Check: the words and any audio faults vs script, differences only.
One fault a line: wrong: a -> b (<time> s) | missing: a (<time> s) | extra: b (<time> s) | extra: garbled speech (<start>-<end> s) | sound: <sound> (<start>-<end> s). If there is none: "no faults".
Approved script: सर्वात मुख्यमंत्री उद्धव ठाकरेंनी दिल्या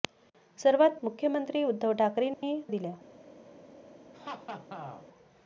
sound: dropout (2.3-2.4 s)
sound: laugh (4.1-5.1 s)